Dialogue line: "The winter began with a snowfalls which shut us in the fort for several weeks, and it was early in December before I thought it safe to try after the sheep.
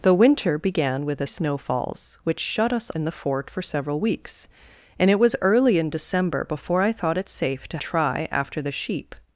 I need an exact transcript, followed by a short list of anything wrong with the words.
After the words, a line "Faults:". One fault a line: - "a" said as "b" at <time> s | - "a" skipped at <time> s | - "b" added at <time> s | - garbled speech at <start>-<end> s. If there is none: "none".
"The winter began with a snowfalls which shut us in the fort for several weeks, and it was early in December before I thought it safe to try after the sheep.
Faults:
none